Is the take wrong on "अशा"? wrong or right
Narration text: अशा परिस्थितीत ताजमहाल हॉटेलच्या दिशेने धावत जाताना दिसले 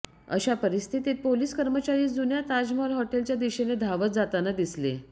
right